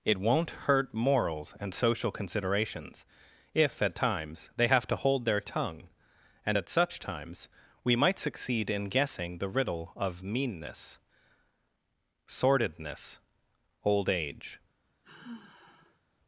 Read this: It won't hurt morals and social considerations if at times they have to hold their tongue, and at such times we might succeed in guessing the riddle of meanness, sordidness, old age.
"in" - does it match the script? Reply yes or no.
yes